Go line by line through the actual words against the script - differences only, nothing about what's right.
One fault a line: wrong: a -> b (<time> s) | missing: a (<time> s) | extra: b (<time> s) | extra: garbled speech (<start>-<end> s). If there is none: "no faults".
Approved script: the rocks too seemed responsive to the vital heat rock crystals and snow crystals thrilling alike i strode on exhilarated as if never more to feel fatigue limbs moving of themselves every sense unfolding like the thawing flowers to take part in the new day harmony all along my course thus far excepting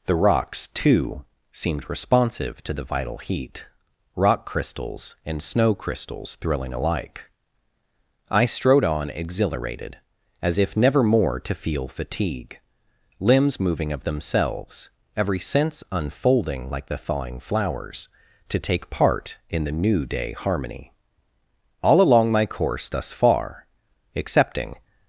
no faults